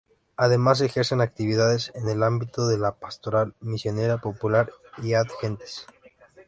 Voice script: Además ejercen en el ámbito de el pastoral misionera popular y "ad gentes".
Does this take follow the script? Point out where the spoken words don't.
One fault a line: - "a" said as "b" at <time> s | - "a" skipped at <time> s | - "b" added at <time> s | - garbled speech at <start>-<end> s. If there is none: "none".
- "actividades" added at 1.2 s
- "el" said as "la" at 2.8 s